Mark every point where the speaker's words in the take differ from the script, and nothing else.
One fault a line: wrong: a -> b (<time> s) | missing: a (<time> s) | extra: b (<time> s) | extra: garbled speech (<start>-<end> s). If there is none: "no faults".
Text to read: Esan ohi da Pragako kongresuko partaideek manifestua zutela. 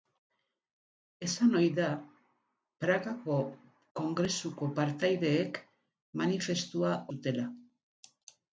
no faults